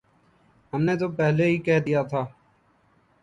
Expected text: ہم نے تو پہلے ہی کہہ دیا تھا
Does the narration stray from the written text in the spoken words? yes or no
no